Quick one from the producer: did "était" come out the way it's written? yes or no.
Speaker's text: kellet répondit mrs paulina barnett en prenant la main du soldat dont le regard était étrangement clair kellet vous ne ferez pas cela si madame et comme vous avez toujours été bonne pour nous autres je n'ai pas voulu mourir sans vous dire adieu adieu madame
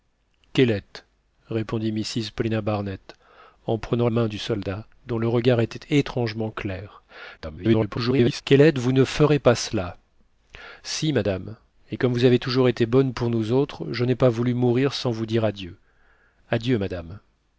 yes